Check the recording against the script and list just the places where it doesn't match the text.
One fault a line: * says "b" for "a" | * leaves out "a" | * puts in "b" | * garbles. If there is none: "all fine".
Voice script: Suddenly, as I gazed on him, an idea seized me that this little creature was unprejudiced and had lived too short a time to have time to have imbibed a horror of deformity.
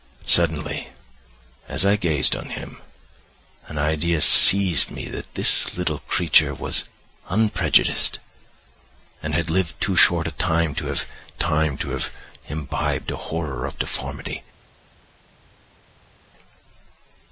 all fine